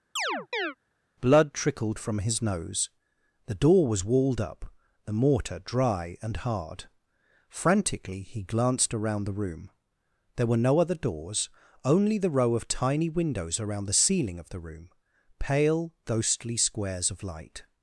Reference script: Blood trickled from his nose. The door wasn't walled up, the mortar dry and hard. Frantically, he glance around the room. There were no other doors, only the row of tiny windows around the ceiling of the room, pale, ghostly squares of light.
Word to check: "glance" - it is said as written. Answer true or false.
false